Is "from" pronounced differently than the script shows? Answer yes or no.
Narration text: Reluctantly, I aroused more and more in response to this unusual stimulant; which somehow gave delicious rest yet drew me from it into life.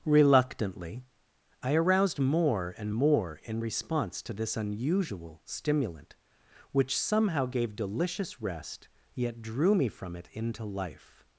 no